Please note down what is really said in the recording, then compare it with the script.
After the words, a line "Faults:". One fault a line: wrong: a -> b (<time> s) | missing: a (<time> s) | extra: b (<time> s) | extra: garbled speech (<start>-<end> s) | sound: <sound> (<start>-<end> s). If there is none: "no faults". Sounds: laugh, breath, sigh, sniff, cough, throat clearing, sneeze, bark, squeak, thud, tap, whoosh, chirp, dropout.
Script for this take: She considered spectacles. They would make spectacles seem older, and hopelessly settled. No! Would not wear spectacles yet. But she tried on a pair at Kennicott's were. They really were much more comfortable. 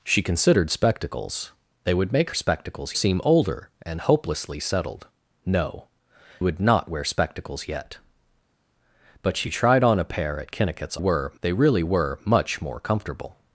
She considered spectacles. They would make spectacles seem older, and hopelessly settled. No! Would not wear spectacles yet. But she tried on a pair at Kennicott's were. They really were much more comfortable.
Faults:
no faults